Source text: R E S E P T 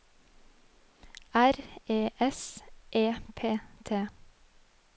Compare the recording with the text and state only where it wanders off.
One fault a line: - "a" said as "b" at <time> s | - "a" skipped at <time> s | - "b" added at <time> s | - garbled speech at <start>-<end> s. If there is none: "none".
none